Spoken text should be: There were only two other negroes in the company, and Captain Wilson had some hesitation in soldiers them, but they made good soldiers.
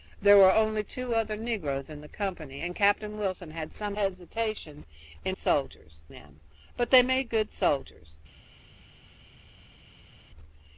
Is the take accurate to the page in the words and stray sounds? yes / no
yes